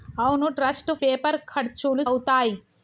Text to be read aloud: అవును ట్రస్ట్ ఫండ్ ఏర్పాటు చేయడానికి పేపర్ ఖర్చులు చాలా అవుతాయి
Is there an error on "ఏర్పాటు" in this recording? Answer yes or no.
yes